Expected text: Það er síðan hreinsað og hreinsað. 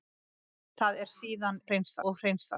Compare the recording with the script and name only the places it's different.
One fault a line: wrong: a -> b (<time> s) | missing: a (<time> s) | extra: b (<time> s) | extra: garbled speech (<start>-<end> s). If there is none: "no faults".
no faults